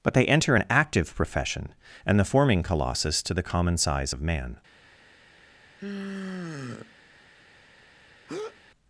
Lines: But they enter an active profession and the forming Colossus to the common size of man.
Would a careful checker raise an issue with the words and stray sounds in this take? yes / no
yes